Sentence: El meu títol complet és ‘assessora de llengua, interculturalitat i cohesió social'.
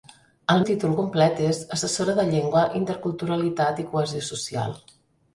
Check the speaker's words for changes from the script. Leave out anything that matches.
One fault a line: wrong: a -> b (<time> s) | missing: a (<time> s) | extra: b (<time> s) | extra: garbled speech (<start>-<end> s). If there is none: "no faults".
missing: meu (0.6 s)